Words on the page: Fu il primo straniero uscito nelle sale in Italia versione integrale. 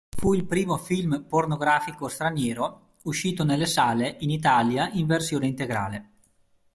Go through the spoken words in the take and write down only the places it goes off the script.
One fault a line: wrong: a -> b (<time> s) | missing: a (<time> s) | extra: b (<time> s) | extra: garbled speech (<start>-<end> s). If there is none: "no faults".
extra: film pornografico (0.8 s)
extra: in (4.9 s)